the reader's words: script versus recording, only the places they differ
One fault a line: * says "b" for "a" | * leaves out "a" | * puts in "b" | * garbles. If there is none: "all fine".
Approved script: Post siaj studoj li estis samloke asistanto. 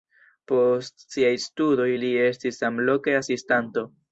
all fine